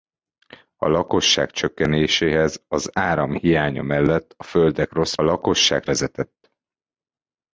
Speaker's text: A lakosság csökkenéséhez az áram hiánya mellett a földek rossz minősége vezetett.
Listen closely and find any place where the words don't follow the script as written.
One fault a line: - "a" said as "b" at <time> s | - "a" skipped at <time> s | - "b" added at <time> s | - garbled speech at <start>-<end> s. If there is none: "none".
- "minősége" said as "lakosság" at 5.2 s